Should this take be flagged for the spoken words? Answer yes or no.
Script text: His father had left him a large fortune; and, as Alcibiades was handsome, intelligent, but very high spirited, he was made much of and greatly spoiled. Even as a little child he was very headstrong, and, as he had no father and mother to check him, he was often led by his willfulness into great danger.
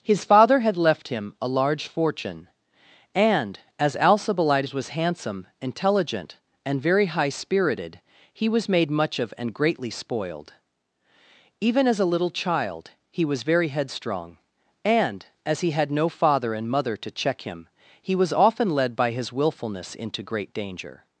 yes